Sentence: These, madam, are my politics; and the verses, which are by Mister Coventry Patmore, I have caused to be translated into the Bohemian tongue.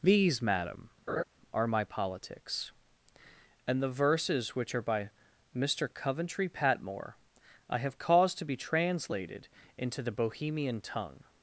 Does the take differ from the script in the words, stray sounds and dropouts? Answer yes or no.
yes